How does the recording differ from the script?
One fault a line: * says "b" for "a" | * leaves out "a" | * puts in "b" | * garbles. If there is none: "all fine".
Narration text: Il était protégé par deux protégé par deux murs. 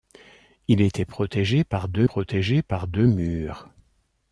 all fine